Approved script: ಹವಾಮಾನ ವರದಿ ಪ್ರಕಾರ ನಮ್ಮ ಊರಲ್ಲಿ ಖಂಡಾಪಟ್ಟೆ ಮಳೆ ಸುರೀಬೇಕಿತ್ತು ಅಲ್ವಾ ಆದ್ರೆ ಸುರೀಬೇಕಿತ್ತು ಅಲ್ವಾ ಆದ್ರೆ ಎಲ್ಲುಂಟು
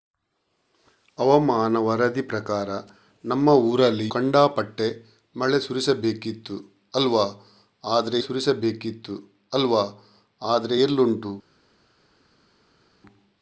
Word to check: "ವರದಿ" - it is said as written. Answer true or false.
true